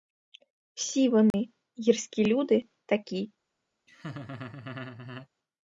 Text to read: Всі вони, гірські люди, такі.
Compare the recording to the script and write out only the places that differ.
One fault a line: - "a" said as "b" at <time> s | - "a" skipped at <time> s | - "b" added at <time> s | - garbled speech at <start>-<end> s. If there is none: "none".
none